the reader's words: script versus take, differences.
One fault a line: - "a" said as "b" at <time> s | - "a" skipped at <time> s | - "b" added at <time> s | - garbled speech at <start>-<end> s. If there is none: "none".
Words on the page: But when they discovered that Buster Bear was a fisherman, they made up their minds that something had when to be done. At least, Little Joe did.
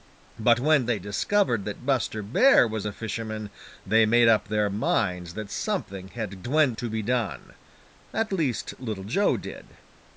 none